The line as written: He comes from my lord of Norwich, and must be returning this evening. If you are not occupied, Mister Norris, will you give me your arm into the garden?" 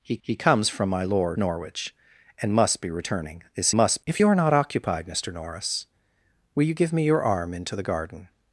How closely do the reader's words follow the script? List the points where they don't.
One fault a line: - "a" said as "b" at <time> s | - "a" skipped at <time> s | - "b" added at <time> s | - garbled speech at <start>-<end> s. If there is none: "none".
- "he" added at 0.2 s
- "of" skipped at 1.4 s
- "evening" said as "must" at 3.7 s